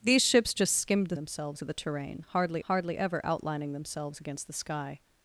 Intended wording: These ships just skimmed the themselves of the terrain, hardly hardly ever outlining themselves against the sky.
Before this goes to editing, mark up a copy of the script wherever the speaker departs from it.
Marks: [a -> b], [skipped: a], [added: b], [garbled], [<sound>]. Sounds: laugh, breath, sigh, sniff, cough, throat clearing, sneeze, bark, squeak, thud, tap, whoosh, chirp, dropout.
These ships just skimmed the themselves of the terrain, hardly hardly ever outlining themselves against the sky.